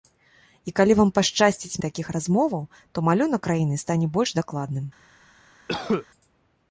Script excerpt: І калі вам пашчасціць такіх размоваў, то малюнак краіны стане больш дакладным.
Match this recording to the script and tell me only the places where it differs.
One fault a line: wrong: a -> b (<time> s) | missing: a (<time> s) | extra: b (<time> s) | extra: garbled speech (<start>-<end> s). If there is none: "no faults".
no faults